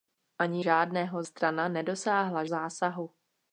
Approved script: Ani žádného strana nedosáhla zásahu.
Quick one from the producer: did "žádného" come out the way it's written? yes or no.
yes